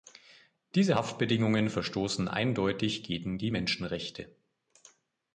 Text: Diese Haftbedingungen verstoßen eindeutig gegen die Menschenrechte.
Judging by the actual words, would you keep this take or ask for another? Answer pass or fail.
pass